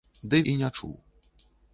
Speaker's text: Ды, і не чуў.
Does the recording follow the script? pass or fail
pass